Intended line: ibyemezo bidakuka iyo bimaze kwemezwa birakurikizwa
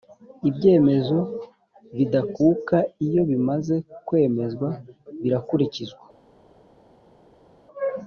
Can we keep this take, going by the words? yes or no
yes